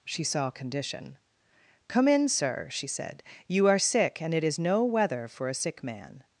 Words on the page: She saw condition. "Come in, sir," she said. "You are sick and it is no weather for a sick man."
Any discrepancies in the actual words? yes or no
no